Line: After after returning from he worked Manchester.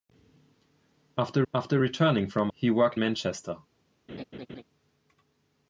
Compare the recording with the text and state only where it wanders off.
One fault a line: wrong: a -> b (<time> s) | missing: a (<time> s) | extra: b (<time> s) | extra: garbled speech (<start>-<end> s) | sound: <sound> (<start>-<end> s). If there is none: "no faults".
sound: laugh (4.1-4.6 s)